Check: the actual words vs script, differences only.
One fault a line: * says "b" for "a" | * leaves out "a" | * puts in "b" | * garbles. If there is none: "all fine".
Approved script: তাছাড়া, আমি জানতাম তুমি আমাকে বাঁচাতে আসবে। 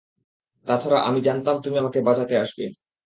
all fine